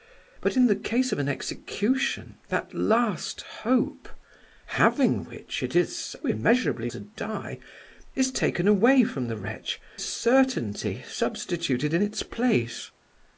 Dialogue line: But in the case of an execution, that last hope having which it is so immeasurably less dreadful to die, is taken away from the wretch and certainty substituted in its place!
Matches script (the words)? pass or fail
fail